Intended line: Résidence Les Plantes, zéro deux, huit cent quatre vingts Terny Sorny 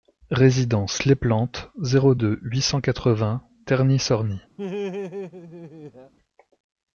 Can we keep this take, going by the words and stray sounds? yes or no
no